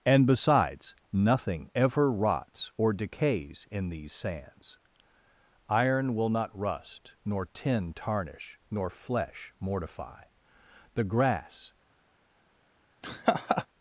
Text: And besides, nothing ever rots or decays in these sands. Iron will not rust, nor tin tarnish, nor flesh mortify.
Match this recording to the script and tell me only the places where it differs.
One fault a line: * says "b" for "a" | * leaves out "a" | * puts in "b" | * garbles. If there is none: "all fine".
* puts in "The grass"